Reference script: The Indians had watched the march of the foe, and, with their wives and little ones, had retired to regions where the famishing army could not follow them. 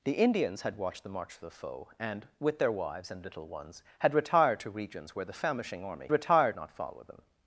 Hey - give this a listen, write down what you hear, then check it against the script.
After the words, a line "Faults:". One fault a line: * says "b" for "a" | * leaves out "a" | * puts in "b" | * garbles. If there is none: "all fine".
The Indians had watched the march of the foe, and, with their wives and little ones, had retired to regions where the famishing army retired not follow them.
Faults:
* says "retired" for "could"